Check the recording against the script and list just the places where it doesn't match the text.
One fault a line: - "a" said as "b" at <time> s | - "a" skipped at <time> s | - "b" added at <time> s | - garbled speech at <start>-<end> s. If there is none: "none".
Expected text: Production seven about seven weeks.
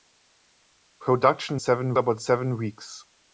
none